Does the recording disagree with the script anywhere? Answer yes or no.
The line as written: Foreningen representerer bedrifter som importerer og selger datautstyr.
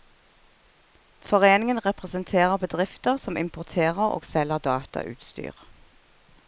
no